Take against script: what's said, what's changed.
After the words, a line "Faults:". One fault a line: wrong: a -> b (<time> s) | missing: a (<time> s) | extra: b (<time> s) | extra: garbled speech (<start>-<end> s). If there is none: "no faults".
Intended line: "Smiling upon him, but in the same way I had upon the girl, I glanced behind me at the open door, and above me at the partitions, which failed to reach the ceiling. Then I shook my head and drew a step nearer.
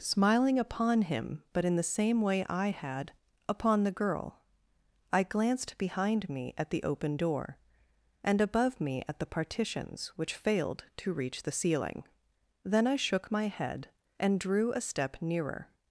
"Smiling upon him, but in the same way I had upon the girl, I glanced behind me at the open door, and above me at the partitions, which failed to reach the ceiling. Then I shook my head and drew a step nearer.
Faults:
no faults